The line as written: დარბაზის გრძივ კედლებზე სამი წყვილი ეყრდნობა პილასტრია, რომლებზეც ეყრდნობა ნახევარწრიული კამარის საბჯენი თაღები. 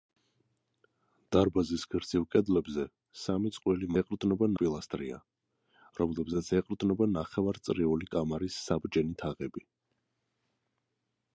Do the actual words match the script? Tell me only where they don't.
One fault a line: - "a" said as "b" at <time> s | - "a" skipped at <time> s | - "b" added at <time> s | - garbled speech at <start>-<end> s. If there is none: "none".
none